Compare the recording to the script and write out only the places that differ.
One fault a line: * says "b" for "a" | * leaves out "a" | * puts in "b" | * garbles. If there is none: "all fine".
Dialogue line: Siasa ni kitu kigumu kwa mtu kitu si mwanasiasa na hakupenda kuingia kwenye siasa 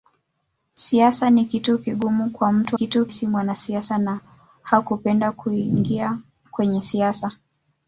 all fine